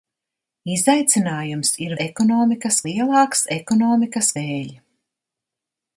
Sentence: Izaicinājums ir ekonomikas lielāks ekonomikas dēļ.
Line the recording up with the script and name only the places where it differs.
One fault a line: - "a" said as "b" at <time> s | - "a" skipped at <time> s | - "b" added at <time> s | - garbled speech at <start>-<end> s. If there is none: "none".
none